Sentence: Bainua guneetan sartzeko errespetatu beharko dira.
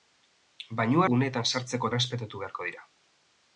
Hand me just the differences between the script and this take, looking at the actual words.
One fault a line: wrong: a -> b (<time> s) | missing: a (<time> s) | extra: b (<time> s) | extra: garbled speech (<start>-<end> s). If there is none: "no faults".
no faults